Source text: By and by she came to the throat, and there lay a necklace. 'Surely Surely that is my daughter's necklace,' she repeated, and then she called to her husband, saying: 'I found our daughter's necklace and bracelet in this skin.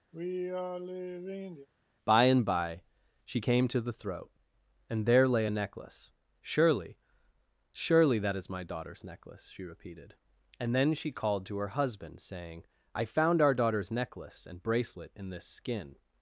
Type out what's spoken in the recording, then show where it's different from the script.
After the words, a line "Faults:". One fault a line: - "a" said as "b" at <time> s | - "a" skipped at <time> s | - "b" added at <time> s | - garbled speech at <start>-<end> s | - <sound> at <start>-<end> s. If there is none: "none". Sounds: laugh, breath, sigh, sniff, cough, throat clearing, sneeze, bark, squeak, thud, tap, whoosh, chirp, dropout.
By and by she came to the throat, and there lay a necklace. 'Surely Surely that is my daughter's necklace,' she repeated, and then she called to her husband, saying: 'I found our daughter's necklace and bracelet in this skin.
Faults:
- sigh at 0.1-1.7 s